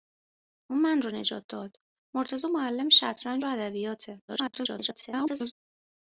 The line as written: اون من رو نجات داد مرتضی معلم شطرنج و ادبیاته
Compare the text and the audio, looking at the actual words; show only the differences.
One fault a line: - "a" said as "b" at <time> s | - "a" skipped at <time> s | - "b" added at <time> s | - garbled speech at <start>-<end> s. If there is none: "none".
- garbled speech at 4.3-5.5 s